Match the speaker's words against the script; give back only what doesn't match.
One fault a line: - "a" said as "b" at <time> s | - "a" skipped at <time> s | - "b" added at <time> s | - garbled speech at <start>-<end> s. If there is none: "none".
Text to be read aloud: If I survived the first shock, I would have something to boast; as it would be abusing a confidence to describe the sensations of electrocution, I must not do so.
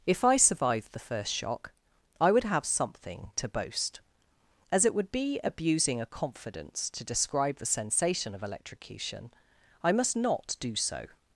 - "sensations" said as "sensation" at 7.7 s